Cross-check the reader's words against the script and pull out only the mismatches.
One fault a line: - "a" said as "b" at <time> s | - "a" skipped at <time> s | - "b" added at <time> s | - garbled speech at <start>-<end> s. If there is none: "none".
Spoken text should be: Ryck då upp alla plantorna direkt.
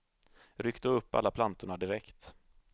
none